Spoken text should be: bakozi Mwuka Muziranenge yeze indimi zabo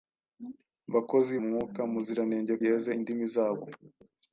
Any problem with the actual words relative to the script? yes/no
no